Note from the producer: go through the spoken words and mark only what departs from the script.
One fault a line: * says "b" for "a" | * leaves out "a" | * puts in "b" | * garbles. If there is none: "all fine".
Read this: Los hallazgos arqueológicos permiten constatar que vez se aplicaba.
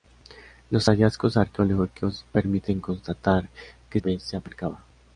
all fine